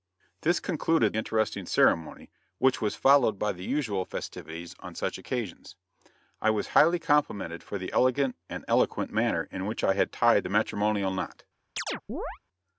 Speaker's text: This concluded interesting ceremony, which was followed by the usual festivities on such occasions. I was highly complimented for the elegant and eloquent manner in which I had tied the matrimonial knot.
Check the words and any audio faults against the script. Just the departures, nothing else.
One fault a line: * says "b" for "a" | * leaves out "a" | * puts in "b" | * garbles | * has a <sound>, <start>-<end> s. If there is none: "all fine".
* has a chirp, 11.8-12.4 s